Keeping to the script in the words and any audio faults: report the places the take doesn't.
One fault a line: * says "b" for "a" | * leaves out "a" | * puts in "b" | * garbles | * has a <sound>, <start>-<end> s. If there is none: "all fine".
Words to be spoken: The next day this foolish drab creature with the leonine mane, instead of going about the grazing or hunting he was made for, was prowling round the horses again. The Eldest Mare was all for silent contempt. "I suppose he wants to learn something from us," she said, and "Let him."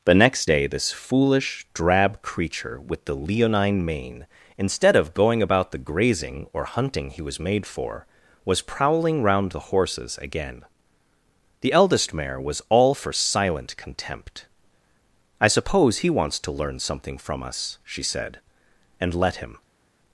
all fine